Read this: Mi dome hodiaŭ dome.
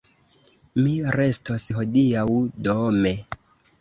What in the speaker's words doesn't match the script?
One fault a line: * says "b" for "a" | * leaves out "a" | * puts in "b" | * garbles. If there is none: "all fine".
* says "restos" for "dome"